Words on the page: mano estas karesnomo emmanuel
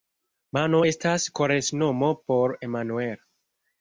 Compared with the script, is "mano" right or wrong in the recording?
right